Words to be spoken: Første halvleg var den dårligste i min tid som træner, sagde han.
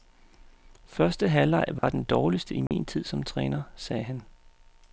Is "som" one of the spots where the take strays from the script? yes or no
no